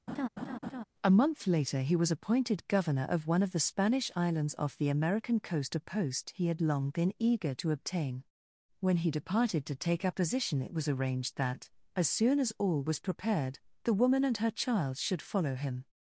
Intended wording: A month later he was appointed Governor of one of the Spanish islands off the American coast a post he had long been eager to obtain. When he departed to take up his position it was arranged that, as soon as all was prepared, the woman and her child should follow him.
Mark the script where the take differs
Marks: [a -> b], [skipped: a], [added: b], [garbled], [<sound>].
[laugh] A month later he was appointed Governor of one of the Spanish islands off the American coast a post he had long been eager to obtain. When he departed to take up [skipped: his] position it was arranged that, as soon as all was prepared, the woman and her child should follow him.